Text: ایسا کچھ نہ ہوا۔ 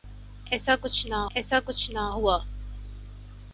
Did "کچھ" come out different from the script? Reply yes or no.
no